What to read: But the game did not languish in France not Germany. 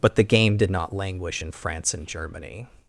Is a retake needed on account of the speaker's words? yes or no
yes